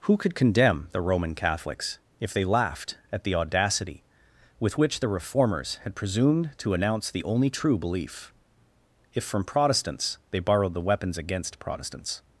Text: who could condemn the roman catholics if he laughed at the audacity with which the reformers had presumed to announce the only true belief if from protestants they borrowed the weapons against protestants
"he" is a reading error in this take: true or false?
true